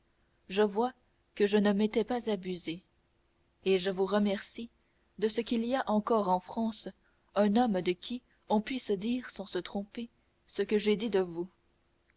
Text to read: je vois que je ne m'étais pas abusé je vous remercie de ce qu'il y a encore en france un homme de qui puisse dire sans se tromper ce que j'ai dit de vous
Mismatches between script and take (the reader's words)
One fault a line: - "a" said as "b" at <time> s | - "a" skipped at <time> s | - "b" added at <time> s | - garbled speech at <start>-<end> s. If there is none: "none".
- "et" added at 3.6 s
- "on" added at 8.5 s